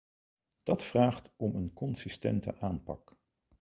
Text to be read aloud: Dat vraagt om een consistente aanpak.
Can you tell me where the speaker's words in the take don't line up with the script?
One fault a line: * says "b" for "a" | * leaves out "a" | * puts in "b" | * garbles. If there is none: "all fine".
all fine